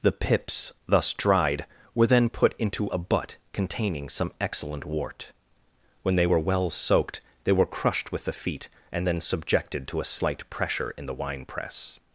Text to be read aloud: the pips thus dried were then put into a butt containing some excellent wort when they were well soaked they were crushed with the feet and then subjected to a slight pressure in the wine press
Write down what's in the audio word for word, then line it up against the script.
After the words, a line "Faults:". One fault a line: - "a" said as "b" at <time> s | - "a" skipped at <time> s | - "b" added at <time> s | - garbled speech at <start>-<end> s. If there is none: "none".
the pips thus dried were then put into a butt containing some excellent wort when they were well soaked they were crushed with the feet and then subjected to a slight pressure in the wine press
Faults:
none